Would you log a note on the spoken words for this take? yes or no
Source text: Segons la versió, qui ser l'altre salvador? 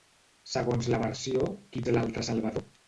no